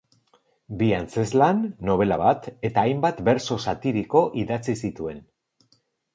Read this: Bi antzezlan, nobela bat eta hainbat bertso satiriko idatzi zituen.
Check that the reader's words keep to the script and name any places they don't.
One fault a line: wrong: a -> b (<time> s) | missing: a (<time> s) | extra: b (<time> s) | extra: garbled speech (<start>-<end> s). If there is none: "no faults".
no faults